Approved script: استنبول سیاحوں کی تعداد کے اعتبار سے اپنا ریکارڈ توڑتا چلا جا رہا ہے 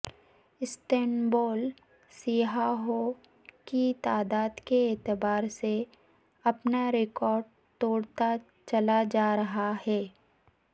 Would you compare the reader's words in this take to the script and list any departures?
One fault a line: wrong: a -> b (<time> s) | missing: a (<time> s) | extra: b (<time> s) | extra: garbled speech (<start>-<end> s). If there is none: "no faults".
no faults